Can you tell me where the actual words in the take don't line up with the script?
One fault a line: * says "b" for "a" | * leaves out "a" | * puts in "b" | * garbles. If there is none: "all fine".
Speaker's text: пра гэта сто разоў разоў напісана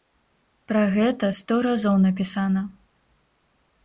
* leaves out "разоў"